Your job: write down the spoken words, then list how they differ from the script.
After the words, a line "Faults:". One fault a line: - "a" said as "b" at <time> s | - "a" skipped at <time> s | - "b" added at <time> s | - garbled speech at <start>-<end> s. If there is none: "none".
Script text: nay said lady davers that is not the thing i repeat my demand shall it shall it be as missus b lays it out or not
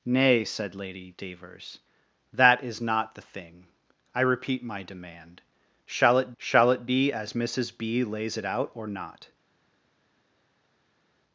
nay said lady davers that is not the thing i repeat my demand shall it shall it be as missus b lays it out or not
Faults:
none